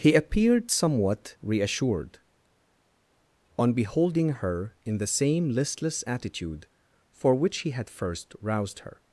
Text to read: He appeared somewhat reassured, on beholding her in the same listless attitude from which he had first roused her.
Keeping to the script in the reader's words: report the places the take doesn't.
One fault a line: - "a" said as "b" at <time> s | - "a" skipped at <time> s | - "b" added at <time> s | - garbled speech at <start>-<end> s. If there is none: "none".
- "from" said as "for" at 7.1 s